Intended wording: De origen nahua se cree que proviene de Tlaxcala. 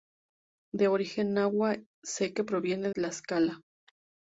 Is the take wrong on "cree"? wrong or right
wrong